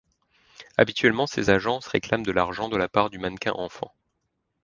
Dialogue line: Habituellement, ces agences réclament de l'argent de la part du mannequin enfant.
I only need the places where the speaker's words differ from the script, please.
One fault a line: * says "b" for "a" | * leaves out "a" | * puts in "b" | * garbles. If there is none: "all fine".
all fine